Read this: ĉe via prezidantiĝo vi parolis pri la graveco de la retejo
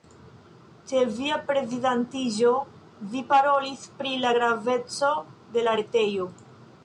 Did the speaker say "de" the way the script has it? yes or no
yes